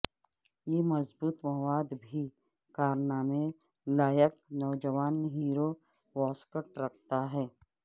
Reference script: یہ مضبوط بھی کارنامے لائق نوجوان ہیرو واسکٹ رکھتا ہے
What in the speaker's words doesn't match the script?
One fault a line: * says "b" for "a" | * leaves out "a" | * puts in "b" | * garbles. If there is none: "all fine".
* puts in "مواد"